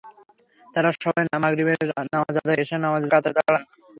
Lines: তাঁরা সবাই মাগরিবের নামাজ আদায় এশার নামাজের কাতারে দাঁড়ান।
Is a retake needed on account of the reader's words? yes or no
no